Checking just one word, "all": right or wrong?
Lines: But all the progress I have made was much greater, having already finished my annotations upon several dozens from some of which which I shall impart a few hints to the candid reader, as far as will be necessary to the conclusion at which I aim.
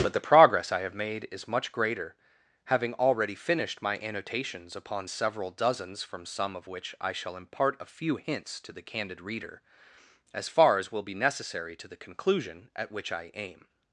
wrong